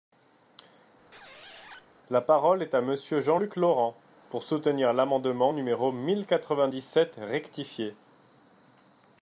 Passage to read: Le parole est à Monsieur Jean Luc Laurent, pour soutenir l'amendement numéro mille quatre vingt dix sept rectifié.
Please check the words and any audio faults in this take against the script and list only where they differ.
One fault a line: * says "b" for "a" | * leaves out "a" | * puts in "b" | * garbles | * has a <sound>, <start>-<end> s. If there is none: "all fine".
* has a squeak, 1.1-1.9 s
* says "La" for "Le"